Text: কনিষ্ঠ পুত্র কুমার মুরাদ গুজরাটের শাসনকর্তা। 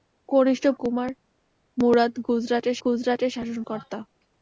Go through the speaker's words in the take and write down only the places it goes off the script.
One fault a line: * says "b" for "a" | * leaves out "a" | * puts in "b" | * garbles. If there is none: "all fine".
* leaves out "পুত্র"
* puts in "গুজরাটের"